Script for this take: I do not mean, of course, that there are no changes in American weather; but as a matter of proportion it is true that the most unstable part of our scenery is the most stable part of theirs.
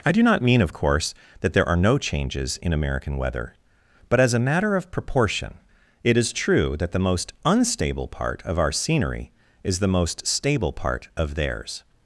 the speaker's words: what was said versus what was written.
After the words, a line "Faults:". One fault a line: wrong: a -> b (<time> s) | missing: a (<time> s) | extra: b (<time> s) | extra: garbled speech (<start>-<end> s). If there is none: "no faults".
I do not mean, of course, that there are no changes in American weather; but as a matter of proportion it is true that the most unstable part of our scenery is the most stable part of theirs.
Faults:
no faults